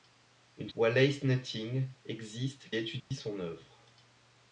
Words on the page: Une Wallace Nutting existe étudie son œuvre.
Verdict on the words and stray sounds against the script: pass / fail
fail